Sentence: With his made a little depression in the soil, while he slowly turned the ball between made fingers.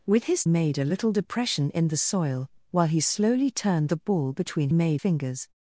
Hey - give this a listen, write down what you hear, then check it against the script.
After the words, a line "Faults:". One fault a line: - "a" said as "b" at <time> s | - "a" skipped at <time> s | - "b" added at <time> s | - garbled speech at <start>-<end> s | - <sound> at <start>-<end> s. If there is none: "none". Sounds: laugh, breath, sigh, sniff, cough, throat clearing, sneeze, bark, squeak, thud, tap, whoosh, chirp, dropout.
With his made a little depression in the soil, while he slowly turned the ball between made fingers.
Faults:
none